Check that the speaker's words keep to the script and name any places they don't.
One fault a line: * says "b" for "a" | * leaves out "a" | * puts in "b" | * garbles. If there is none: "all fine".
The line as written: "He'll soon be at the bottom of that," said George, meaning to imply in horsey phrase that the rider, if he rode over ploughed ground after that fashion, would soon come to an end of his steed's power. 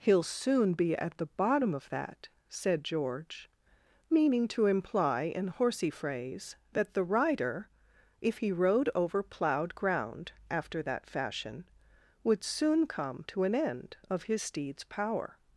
all fine